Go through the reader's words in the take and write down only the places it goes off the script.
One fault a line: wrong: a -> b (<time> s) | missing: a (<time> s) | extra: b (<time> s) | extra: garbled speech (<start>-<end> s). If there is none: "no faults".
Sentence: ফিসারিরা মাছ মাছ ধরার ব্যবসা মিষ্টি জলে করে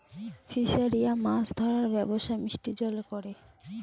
missing: মাছ (1.5 s)